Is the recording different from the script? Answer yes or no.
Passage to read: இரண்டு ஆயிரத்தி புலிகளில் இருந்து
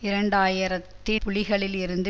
no